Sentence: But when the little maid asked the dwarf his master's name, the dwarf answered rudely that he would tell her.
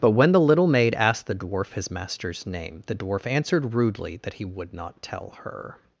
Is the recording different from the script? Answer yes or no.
yes